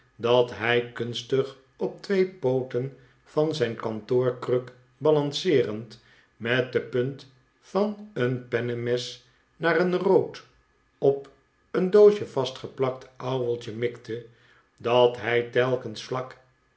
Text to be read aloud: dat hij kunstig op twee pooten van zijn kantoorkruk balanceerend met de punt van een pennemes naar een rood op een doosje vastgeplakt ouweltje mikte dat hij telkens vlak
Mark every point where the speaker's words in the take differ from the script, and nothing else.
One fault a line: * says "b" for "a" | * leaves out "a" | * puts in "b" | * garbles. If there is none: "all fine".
all fine